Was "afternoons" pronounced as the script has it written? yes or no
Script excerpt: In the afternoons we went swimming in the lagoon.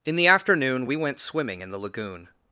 no